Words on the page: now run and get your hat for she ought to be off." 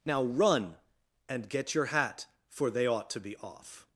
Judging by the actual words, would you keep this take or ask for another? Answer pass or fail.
fail